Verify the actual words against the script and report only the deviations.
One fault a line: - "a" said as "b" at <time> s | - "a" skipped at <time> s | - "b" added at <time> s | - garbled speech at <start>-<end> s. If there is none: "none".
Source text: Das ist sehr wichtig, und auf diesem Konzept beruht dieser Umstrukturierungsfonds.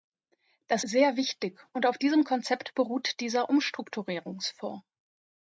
- "ist" skipped at 0.8 s